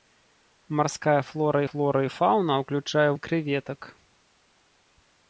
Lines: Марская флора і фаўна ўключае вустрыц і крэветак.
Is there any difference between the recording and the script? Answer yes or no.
yes